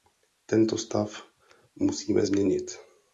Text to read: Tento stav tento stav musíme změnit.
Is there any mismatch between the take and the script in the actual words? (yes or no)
yes